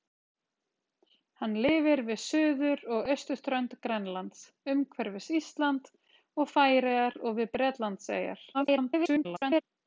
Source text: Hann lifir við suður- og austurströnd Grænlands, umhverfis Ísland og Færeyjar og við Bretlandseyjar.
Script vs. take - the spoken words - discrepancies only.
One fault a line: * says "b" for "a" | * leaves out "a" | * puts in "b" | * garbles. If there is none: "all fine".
* garbles